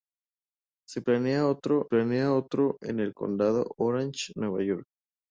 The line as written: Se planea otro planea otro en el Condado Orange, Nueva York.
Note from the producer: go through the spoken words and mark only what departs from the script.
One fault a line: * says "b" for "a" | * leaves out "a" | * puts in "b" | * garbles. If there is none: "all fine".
all fine